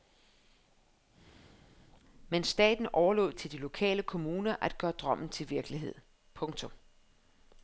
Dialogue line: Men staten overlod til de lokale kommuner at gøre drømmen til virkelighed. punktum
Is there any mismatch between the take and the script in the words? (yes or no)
no